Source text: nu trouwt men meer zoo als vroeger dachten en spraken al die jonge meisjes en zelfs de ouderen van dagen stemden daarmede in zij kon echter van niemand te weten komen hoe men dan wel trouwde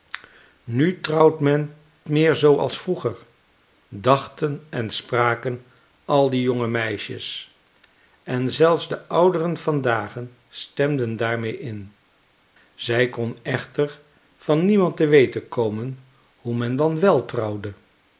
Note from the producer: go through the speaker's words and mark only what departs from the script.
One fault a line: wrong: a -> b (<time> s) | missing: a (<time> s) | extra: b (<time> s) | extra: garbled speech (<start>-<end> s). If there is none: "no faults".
no faults